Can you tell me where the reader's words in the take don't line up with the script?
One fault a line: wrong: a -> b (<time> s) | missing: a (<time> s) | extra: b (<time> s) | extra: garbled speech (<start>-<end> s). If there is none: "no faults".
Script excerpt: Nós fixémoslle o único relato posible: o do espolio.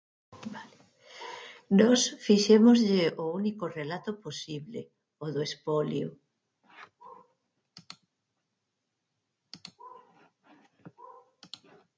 no faults